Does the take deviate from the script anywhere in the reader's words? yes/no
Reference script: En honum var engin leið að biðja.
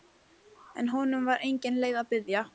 no